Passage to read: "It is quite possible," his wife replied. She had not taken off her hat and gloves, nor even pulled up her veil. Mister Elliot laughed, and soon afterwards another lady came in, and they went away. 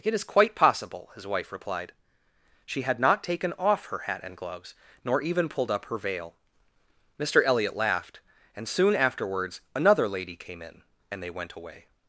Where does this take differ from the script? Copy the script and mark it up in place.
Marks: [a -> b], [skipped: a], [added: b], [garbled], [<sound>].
"It is quite possible," his wife replied. She had not taken off her hat and gloves, nor even pulled up her veil. Mister Elliot laughed, and soon afterwards another lady came in, and they went away.